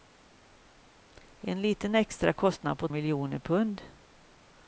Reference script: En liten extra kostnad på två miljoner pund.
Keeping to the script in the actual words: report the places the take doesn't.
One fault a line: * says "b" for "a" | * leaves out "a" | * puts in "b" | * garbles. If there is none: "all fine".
* leaves out "två"